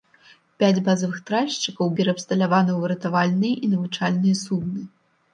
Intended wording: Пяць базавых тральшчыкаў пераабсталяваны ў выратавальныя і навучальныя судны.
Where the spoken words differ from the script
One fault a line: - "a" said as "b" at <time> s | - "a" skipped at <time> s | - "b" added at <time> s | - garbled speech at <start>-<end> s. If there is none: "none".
none